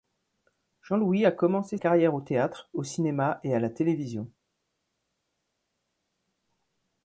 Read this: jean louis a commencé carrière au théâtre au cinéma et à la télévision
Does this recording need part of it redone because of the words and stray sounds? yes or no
no